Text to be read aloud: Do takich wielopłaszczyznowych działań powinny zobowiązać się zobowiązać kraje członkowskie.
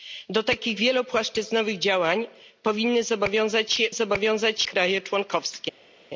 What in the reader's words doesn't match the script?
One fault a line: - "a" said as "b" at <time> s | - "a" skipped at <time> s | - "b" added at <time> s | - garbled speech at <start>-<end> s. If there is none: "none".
none